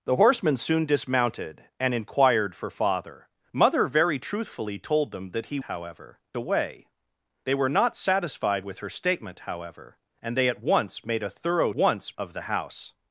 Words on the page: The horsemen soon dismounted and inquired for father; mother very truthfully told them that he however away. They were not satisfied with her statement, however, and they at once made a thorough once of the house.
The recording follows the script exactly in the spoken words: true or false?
true